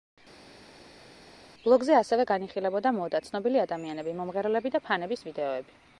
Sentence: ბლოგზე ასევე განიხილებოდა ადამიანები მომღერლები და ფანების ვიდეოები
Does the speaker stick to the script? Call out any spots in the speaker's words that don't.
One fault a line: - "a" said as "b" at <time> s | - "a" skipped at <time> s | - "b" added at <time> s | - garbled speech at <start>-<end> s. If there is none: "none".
- "მოდა ცნობილი" added at 3.0 s